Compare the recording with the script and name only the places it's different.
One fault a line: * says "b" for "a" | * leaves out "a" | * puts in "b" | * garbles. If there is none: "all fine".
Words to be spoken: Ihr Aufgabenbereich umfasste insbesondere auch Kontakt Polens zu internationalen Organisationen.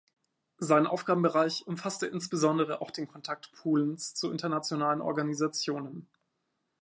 * says "Sein" for "Ihr"
* puts in "den"